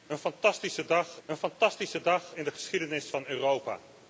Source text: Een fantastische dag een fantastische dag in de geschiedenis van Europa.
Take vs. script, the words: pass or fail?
pass